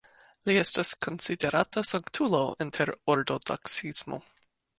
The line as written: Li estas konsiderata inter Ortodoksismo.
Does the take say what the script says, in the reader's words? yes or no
no